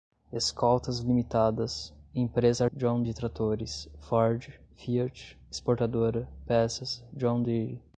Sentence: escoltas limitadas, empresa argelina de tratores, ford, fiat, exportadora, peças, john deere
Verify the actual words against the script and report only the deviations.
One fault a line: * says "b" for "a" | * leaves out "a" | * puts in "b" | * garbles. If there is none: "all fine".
* says "john" for "argelina"